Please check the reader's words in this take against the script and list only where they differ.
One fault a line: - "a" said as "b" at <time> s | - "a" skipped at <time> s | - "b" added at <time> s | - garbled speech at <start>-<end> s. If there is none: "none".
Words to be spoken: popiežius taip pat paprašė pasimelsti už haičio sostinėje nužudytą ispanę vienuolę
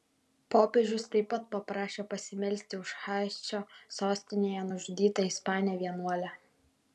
none